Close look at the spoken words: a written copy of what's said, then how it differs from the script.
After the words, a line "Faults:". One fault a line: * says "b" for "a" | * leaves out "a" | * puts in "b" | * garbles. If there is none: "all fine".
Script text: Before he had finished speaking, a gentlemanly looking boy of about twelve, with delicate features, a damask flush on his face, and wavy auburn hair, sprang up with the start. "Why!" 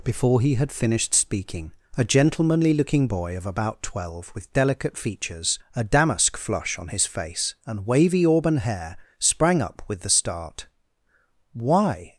Before he had finished speaking, a gentlemanly looking boy of about twelve, with delicate features, a damask flush on his face, and wavy auburn hair, sprang up with the start. "Why!"
Faults:
all fine